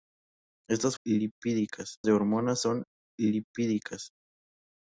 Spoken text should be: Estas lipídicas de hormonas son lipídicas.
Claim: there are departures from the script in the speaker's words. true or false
false